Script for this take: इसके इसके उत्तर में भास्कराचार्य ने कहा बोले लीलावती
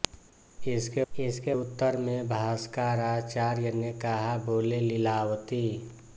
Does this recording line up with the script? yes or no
yes